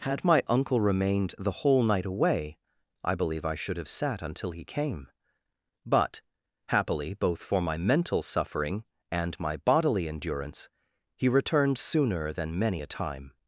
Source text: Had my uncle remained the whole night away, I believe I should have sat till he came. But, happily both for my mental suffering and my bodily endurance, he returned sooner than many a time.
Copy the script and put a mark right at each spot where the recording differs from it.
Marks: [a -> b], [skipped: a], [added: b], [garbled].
Had my uncle remained the whole night away, I believe I should have sat [till -> until] he came. But, happily both for my mental suffering and my bodily endurance, he returned sooner than many a time.